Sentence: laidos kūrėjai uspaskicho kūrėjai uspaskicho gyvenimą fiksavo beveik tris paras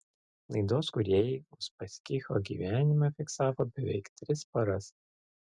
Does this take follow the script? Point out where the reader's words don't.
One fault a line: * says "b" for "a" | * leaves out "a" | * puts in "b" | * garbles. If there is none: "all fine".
* leaves out "kūrėjai uspaskicho"